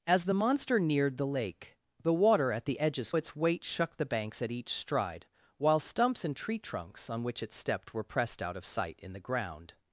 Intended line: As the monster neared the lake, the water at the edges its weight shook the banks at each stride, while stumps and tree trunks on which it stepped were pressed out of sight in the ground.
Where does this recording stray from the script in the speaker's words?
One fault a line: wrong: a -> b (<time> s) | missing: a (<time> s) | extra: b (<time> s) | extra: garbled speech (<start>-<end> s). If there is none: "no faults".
no faults